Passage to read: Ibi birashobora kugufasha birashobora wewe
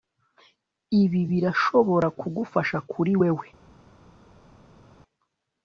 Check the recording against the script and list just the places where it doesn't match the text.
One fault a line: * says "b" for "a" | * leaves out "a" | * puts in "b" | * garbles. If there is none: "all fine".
* says "kuri" for "birashobora"